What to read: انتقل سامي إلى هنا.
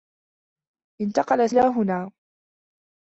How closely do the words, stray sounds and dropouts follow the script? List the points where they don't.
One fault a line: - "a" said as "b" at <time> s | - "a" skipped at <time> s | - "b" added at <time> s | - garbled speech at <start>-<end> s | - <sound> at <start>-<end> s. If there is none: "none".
- "سامي" skipped at 1.5 s